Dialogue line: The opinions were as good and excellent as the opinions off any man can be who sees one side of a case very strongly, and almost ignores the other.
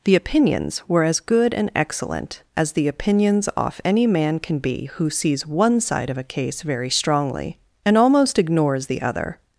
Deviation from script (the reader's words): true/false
false